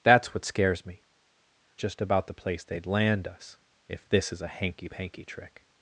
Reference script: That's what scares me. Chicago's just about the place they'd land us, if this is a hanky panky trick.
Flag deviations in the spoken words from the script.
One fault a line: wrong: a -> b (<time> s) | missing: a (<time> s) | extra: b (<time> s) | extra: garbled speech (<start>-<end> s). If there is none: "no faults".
missing: Chicago's (1.0 s)